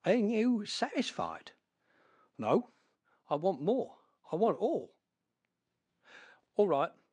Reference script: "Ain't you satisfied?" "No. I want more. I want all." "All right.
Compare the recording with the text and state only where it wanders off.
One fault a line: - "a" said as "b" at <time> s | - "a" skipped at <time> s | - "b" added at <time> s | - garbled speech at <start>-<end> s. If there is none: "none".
none